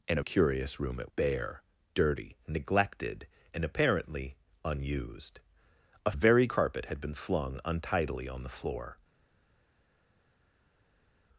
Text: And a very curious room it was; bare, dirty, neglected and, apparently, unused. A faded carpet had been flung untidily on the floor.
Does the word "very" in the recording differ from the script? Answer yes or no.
yes